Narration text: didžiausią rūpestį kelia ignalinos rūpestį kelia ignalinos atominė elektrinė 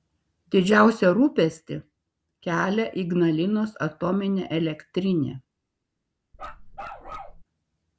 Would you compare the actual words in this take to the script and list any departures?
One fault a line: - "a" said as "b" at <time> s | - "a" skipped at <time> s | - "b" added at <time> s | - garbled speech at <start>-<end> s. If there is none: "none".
- "rūpestį kelia ignalinos" skipped at 3.8 s